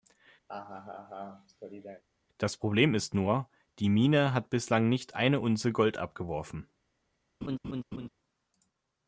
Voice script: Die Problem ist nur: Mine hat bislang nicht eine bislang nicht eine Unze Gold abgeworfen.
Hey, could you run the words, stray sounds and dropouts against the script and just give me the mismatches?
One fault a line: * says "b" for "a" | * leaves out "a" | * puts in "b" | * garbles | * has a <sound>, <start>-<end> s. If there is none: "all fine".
* has a laugh, 0.5-2.0 s
* says "Das" for "Die"
* puts in "Die"
* leaves out "bislang nicht eine"
* has a laugh, 7.4-8.1 s